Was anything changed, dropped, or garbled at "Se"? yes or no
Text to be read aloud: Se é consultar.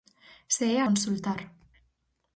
no